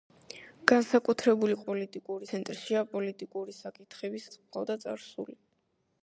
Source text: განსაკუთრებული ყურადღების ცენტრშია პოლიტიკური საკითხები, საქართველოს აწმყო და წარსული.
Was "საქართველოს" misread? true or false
true